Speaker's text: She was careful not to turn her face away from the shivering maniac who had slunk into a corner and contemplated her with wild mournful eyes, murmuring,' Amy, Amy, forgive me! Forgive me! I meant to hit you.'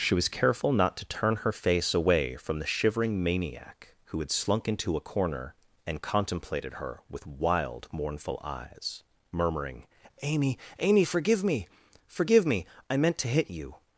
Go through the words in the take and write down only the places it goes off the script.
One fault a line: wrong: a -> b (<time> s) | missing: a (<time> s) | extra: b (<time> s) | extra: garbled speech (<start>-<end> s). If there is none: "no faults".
no faults